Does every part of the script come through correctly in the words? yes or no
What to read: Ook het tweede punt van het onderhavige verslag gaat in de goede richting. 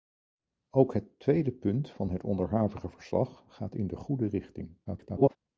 no